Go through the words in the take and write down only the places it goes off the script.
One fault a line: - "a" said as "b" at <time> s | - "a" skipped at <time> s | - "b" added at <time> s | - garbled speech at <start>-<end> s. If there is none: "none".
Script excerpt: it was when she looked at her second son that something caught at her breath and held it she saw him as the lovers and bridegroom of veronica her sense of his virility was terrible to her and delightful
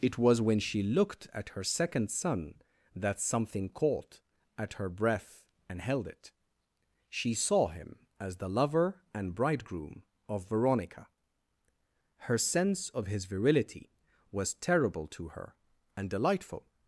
- "lovers" said as "lover" at 8.5 s